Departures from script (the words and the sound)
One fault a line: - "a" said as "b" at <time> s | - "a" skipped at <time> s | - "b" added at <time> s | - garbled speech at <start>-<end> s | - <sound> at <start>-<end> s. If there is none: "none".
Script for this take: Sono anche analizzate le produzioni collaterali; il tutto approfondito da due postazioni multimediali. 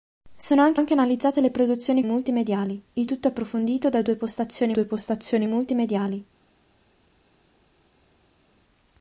- "anche" added at 0.7 s
- "collaterali" said as "multimediali" at 2.1 s
- "due postazioni" added at 4.7 s